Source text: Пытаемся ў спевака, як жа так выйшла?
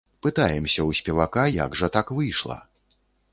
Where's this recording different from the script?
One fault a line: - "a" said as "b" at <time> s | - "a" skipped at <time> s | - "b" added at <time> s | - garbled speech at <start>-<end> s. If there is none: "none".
none